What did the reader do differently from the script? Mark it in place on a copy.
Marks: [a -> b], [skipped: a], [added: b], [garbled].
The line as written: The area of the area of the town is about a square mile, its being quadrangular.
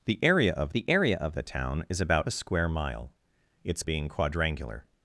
The area of the area of the town is about a square mile, its being quadrangular.